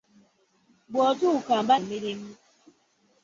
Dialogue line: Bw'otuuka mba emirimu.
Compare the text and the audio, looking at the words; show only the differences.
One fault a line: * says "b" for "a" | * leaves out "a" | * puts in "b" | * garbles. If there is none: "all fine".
all fine